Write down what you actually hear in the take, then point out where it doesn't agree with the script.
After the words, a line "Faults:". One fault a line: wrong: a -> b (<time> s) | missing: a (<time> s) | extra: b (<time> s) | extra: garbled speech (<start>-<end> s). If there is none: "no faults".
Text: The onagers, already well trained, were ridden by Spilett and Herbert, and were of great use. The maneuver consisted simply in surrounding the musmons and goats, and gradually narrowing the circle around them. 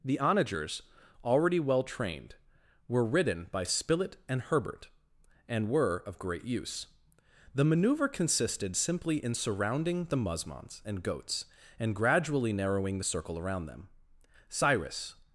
The onagers, already well trained, were ridden by Spilett and Herbert, and were of great use. The maneuver consisted simply in surrounding the musmons and goats, and gradually narrowing the circle around them. Cyrus
Faults:
extra: Cyrus (14.5 s)